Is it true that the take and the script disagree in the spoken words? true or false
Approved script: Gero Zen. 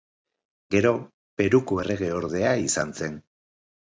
true